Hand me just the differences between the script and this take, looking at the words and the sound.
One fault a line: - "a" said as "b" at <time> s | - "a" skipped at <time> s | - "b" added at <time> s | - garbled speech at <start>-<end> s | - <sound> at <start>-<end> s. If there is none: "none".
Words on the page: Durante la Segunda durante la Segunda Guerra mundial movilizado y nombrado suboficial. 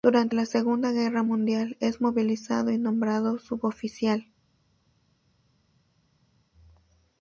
- "durante la Segunda" skipped at 0.9 s
- "es" added at 1.8 s